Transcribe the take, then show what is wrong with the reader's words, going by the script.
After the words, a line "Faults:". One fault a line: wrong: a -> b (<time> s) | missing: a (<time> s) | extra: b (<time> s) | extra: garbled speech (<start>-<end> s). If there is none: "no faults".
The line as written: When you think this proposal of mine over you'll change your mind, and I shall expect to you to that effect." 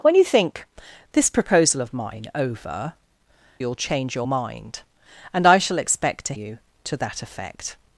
When you think this proposal of mine over you'll change your mind, and I shall expect to you to that effect."
Faults:
no faults